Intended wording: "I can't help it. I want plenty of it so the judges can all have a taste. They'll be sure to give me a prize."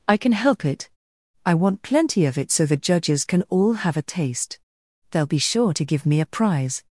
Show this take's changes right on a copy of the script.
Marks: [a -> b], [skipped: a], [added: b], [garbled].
"I [can't -> can] help it. I want plenty of it so the judges can all have a taste. They'll be sure to give me a prize."